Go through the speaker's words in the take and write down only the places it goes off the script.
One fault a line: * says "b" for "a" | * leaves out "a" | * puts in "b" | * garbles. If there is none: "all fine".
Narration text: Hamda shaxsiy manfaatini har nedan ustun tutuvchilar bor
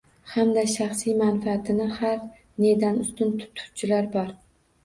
all fine